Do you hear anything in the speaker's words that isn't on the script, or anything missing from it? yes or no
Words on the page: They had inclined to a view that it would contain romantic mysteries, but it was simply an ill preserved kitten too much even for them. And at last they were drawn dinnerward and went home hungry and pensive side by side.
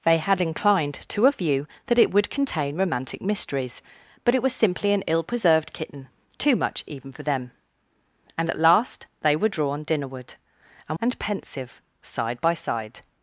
yes